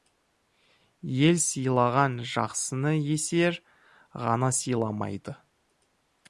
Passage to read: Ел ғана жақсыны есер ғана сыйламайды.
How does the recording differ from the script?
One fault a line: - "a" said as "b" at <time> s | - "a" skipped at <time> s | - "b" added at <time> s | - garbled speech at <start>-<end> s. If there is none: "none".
- "ғана" said as "сыйлаған" at 1.4 s